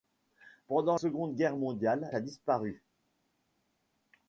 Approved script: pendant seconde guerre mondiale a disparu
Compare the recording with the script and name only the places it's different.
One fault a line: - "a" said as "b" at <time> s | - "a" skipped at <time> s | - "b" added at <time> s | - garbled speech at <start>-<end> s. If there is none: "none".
none